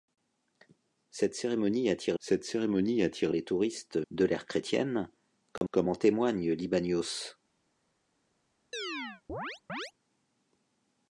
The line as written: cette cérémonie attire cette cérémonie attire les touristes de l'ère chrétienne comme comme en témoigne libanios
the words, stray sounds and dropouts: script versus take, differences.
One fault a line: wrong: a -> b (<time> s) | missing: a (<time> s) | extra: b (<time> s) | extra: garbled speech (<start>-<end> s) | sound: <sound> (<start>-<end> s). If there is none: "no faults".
sound: dropout (5.6-5.6 s)
sound: chirp (8.7-9.9 s)